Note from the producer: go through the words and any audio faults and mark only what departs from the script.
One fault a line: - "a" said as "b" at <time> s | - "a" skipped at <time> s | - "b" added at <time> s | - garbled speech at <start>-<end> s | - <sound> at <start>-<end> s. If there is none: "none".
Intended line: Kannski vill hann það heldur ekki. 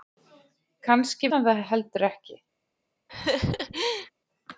- "vill" skipped at 1.3 s
- laugh at 3.1-4.1 s